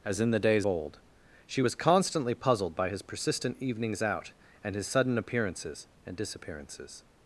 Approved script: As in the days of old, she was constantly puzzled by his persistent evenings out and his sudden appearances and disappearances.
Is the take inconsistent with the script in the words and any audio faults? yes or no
yes